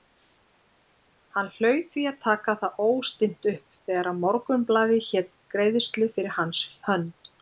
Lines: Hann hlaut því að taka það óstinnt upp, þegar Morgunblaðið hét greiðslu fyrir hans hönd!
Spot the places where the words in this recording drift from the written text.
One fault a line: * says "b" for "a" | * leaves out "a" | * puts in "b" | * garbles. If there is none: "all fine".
all fine